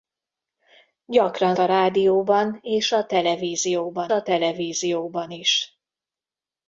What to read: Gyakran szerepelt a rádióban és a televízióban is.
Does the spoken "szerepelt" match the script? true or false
false